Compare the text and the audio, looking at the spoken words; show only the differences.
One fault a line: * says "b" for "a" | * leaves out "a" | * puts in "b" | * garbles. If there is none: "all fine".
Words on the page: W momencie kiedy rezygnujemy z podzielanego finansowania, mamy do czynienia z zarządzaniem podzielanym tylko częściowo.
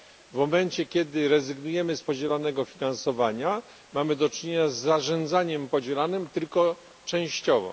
all fine